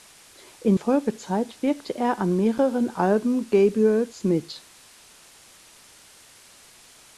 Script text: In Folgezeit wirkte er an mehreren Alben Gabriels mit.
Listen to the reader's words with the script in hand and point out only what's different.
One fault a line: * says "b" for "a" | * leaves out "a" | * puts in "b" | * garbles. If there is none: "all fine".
all fine